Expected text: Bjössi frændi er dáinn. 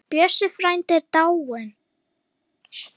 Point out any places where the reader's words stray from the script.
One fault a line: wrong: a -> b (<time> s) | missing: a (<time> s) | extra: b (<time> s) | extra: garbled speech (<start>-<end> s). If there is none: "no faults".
no faults